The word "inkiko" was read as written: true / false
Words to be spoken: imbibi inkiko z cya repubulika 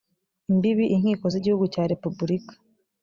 true